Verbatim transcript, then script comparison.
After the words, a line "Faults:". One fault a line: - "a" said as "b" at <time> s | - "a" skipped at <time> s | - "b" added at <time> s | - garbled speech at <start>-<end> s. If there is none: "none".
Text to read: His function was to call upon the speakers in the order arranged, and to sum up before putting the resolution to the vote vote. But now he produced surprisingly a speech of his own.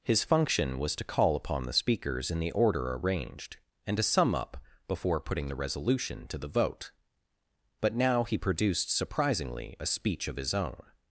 His function was to call upon the speakers in the order arranged, and to sum up before putting the resolution to the vote. But now he produced surprisingly a speech of his own.
Faults:
- "vote" skipped at 6.9 s